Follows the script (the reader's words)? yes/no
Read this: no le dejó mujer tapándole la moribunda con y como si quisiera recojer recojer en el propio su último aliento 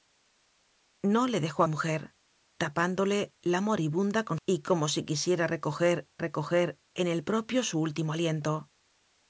yes